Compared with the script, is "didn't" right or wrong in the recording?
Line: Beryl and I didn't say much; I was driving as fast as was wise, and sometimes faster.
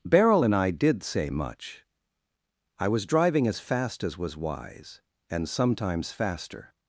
wrong